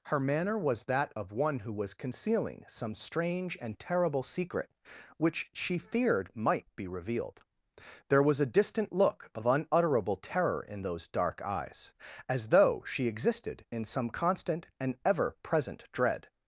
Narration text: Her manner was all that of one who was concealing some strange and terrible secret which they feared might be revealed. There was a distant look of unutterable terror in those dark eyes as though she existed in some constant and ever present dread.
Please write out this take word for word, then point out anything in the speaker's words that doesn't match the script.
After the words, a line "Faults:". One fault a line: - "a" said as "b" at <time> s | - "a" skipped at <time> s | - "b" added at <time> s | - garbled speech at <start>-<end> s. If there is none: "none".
Her manner was that of one who was concealing some strange and terrible secret which she feared might be revealed. There was a distant look of unutterable terror in those dark eyes as though she existed in some constant and ever present dread.
Faults:
- "all" skipped at 0.8 s
- "they" said as "she" at 5.5 s